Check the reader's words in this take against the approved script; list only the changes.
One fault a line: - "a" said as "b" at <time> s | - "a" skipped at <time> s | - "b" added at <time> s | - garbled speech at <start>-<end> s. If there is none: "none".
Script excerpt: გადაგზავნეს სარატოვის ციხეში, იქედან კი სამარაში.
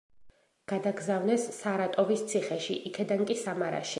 none